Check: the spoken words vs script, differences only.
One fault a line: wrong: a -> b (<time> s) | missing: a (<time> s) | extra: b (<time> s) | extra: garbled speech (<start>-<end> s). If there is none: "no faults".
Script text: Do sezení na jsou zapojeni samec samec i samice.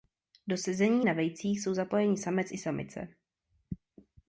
extra: vejcích (1.1 s)
missing: samec (2.5 s)